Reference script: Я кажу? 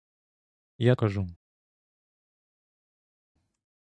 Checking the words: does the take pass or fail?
pass